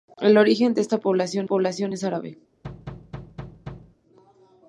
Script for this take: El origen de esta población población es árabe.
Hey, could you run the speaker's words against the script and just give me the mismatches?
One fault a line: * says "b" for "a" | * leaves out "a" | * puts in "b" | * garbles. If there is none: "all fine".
all fine